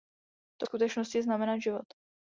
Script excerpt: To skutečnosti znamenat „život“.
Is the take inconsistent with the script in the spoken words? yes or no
no